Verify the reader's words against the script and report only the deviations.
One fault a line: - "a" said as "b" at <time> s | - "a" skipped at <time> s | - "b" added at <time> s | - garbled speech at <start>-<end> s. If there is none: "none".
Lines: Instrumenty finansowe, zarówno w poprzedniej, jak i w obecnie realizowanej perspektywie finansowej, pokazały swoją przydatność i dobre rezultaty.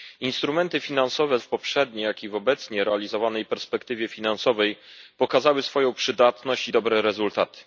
- "zarówno" skipped at 1.4 s